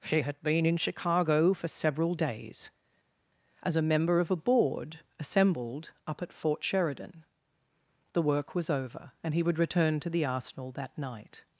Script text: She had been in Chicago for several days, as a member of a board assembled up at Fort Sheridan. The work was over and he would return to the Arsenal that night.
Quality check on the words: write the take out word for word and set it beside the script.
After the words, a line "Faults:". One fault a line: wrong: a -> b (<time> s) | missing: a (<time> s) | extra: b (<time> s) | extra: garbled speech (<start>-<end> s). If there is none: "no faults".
She had been in Chicago for several days, as a member of a board assembled up at Fort Sheridan. The work was over and he would return to the Arsenal that night.
Faults:
no faults